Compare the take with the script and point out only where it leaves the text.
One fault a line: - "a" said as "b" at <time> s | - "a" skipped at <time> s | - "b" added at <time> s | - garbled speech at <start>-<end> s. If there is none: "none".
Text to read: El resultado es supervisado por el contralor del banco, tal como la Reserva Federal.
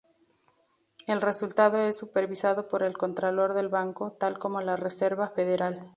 none